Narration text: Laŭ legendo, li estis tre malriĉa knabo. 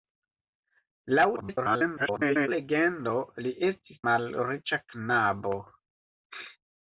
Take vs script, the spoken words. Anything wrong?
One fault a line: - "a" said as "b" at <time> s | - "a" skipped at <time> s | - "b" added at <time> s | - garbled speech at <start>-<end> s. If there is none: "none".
- garbled speech at 1.4-2.5 s
- "tre" skipped at 4.0 s